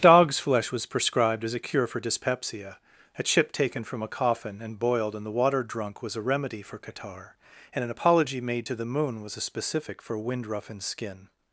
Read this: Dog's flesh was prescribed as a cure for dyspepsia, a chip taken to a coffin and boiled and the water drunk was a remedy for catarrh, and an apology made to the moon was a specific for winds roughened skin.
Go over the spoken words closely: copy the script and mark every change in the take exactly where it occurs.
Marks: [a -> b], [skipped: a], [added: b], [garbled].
Dog's flesh was prescribed as a cure for dyspepsia, a chip taken [to -> from] a coffin and boiled and the water drunk was a remedy for catarrh, and an apology made to the moon was a specific for [winds -> wind] roughened skin.